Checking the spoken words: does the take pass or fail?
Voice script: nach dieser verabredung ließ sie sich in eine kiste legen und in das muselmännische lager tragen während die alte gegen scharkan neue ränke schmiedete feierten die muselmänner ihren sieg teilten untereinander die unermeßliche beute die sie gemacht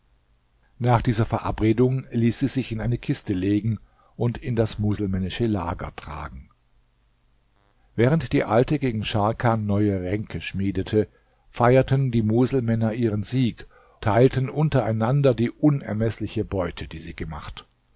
pass